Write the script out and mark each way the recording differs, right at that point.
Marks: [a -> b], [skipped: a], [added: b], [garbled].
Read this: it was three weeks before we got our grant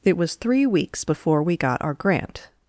it was three weeks before we got our grant